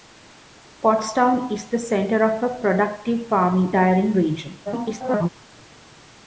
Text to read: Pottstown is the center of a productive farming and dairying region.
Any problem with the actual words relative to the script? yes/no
yes